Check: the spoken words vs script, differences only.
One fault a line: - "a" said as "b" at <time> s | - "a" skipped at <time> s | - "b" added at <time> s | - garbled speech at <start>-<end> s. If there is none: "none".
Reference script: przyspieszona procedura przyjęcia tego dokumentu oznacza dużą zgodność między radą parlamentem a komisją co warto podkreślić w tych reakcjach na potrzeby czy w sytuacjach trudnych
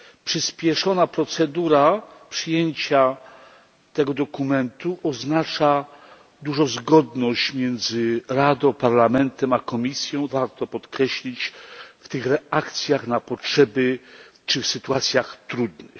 - "co" skipped at 10.3 s